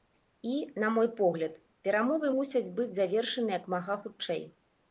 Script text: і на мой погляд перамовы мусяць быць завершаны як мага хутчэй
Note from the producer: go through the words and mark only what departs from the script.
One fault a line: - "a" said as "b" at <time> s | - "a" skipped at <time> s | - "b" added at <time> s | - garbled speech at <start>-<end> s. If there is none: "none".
none